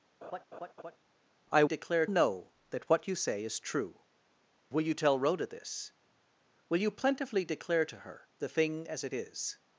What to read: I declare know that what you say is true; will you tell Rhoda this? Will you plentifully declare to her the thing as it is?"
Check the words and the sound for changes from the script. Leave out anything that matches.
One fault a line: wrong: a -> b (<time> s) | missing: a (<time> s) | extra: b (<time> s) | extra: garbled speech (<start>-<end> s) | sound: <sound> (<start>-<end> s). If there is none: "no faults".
sound: laugh (0.2-1.0 s)